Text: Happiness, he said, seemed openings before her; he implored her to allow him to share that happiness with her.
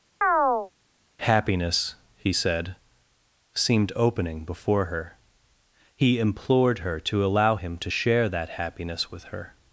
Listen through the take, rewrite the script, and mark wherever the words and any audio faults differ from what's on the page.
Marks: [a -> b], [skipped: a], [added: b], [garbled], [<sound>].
[chirp] Happiness, he said, seemed [openings -> opening] before her; he implored her to allow him to share that happiness with her.